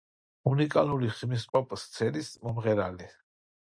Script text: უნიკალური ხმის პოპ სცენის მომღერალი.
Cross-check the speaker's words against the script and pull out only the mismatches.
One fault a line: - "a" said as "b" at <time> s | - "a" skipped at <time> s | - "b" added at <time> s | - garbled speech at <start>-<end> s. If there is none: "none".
none